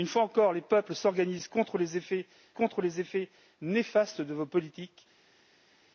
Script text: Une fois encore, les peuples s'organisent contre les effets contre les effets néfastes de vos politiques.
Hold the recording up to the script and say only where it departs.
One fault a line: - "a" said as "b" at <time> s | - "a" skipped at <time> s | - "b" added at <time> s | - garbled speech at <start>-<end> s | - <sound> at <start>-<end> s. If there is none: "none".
none